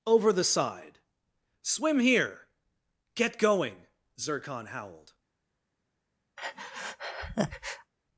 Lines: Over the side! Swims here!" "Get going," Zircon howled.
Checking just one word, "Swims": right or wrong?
wrong